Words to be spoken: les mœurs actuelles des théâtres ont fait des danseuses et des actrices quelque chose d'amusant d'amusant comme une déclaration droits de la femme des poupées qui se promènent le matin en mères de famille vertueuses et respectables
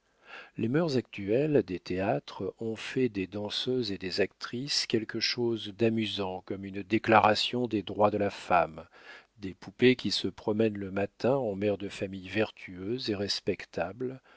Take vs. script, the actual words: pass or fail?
fail